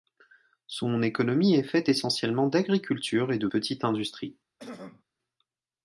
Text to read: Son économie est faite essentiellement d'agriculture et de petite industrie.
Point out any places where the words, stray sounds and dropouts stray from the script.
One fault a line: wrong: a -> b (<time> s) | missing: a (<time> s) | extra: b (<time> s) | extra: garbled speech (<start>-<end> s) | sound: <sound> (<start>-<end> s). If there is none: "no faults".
sound: throat clearing (4.6-5.0 s)